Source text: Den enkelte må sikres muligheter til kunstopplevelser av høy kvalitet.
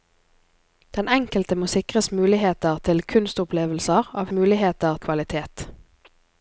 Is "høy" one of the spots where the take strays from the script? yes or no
yes